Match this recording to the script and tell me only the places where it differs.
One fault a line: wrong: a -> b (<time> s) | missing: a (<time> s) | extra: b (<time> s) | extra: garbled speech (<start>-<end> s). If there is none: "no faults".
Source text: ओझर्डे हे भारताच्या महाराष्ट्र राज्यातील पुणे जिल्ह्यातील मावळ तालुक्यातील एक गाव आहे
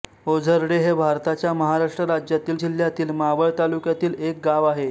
missing: पुणे (2.6 s)